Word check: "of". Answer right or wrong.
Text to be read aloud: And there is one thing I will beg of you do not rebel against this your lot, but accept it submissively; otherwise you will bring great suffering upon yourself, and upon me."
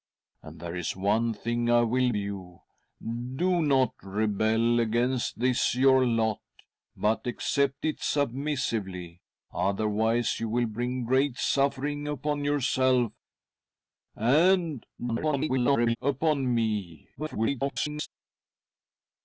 wrong